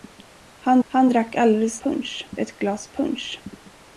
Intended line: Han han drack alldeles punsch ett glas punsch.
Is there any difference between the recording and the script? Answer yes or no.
no